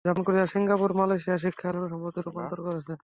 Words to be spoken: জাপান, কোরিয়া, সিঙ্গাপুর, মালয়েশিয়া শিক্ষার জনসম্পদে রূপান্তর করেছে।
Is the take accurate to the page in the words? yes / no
yes